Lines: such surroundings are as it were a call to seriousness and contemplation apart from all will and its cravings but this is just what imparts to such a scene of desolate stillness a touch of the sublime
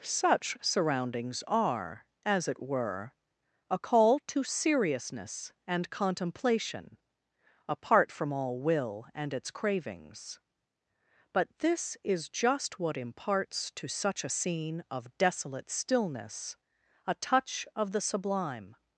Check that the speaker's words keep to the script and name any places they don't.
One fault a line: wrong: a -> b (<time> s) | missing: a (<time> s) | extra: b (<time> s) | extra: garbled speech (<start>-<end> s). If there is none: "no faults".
no faults